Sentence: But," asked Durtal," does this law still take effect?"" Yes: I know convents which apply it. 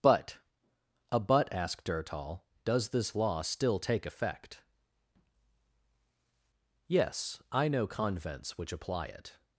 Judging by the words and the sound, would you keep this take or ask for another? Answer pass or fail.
fail